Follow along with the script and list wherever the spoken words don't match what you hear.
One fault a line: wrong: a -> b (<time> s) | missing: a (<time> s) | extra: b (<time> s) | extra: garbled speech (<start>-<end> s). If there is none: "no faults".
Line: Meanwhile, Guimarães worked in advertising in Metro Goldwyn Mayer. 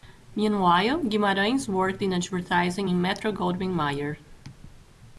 no faults